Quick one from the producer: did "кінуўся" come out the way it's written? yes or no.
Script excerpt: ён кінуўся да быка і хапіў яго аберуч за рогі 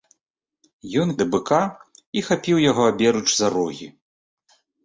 no